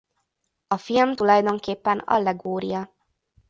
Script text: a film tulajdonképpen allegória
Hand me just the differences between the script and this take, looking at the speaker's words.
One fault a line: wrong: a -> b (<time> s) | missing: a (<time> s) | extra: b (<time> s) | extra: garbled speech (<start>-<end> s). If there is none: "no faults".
no faults